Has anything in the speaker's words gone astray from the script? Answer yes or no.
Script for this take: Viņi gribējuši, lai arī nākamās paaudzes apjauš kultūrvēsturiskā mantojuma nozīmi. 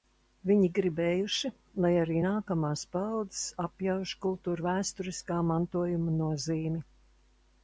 no